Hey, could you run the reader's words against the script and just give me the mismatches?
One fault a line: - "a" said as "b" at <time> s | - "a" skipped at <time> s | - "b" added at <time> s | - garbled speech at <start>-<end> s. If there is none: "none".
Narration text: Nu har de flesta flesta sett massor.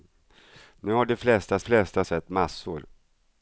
none